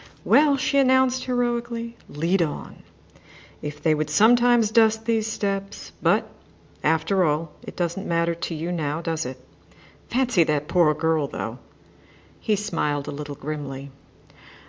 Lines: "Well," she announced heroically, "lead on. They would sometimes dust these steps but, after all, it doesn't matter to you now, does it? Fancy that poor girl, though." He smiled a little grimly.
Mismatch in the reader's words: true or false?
true